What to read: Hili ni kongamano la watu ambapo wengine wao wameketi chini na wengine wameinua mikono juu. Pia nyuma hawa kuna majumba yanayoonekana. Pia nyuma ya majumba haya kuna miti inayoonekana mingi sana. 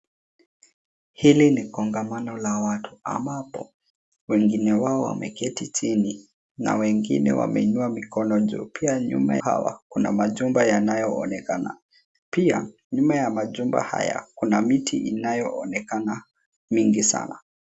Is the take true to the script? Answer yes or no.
yes